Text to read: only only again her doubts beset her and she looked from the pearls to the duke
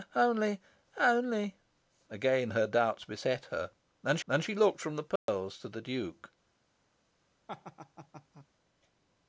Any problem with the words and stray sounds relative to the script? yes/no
yes